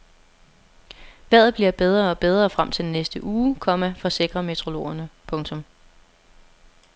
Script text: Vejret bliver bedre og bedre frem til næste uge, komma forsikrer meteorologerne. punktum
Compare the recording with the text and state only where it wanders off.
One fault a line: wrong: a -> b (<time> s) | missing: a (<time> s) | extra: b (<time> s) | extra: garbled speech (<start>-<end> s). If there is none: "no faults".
no faults